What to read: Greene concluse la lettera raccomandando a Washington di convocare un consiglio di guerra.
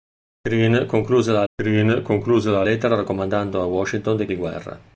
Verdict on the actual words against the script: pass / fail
fail